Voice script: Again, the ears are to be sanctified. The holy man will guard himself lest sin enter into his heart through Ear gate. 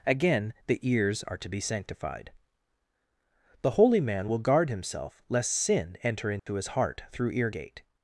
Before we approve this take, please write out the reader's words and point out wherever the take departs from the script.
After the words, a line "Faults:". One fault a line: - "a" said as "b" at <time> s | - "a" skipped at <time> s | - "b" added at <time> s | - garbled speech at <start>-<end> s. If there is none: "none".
Again, the ears are to be sanctified. The holy man will guard himself lest sin enter into his heart through Ear gate.
Faults:
none